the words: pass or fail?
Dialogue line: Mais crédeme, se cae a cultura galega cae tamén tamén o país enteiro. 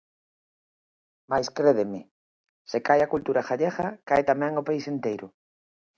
fail